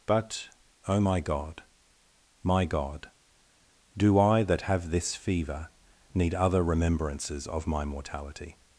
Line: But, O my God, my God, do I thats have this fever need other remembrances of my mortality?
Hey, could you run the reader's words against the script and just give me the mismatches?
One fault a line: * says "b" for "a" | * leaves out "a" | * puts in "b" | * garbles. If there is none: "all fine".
* says "that" for "thats"